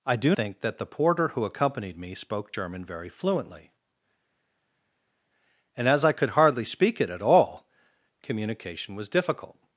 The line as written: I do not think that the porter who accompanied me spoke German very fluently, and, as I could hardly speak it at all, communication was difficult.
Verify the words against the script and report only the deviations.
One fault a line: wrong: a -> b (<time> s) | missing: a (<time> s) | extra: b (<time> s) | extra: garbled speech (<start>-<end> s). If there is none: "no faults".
missing: not (0.3 s)